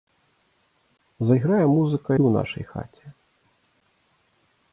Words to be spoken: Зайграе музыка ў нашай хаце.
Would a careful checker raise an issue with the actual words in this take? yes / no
no